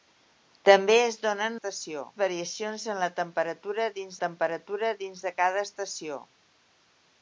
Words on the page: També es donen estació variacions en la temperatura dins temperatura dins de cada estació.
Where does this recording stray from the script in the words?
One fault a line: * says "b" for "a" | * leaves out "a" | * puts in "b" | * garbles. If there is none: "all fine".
all fine